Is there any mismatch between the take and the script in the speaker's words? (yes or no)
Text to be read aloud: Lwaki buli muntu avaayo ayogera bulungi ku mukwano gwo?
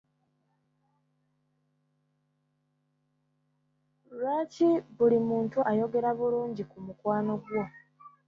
yes